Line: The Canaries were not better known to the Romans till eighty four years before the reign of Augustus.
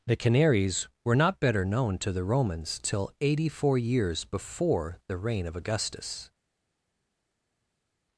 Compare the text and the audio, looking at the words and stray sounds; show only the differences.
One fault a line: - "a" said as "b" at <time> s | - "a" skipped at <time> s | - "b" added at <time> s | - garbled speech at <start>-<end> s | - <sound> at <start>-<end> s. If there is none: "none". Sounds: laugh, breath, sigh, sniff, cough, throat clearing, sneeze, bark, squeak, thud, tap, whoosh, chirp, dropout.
none